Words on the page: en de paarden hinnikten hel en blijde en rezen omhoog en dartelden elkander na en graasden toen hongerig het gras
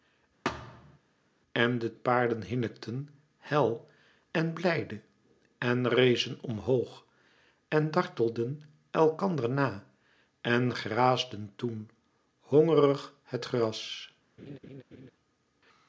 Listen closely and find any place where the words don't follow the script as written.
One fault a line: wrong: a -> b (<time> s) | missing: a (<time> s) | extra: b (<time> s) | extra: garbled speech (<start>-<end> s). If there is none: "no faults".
no faults